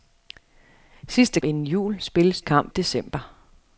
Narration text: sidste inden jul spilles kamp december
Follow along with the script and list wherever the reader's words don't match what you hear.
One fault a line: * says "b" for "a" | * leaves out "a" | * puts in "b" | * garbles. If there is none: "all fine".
all fine